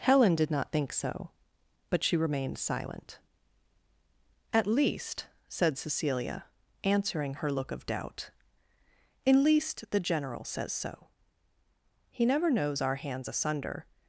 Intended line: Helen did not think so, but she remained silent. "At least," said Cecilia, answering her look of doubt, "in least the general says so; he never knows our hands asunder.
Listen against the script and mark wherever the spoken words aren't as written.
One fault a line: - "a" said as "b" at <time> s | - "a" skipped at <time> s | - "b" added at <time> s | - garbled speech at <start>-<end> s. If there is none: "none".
none